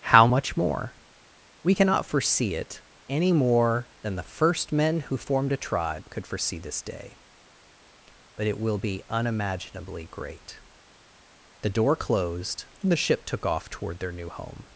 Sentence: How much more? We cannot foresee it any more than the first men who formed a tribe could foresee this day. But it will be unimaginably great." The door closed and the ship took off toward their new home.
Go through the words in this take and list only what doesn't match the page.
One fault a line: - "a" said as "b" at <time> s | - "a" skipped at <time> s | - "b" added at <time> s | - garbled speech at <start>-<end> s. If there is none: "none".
none